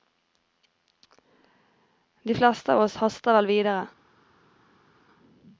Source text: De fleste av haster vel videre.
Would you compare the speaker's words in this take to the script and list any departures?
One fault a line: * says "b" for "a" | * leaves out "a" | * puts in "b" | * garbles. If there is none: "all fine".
* puts in "oss"